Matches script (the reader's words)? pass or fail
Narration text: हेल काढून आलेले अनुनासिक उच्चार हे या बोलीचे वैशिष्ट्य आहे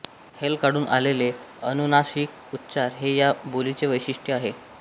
pass